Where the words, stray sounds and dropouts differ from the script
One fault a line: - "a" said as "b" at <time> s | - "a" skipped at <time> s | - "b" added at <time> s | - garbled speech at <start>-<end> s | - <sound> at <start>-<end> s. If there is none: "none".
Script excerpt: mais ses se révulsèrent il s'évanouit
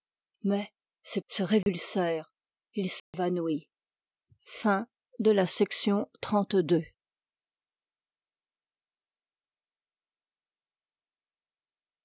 - dropout at 1.6-1.7 s
- dropout at 3.0-3.1 s